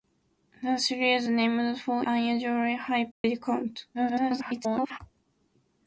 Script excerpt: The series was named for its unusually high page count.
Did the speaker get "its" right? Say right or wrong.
wrong